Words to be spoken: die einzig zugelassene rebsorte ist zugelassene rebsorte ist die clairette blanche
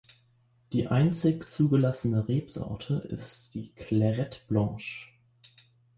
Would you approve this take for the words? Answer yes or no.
no